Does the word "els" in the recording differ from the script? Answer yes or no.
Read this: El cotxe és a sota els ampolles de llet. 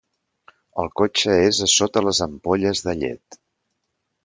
yes